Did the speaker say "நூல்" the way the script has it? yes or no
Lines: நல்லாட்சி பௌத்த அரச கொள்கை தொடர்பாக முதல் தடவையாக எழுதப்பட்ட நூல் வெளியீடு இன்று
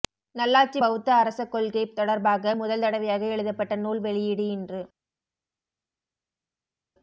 yes